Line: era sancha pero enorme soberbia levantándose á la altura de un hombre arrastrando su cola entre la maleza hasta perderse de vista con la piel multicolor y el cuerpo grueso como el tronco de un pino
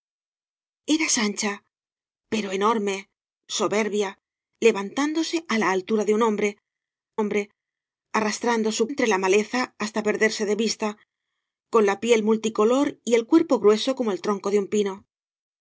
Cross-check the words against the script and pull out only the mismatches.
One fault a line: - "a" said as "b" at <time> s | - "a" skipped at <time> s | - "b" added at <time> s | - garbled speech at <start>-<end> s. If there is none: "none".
- "hombre" added at 7.2 s
- "cola" skipped at 8.8 s